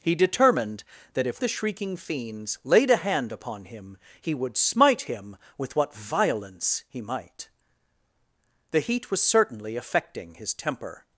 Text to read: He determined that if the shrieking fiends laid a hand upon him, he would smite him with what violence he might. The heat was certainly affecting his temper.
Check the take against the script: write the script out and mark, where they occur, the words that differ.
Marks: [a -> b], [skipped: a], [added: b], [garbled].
He determined that if the shrieking fiends laid a hand upon him, he would smite him with what violence he might. The heat was certainly affecting his temper.